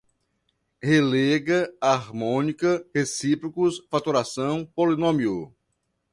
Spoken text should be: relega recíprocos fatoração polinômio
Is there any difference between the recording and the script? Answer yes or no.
yes